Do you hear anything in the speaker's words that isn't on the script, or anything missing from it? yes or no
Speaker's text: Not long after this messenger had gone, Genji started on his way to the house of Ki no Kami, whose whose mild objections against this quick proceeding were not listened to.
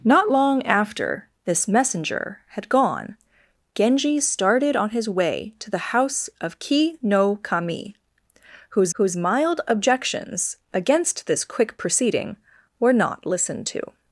no